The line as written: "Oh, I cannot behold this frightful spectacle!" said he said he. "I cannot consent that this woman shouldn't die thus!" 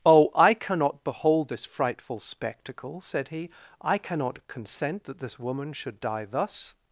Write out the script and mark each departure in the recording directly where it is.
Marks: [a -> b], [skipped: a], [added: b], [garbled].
"Oh, I cannot behold this frightful spectacle!" said he [skipped: said he.] "I cannot consent that this woman [shouldn't -> should] die thus!"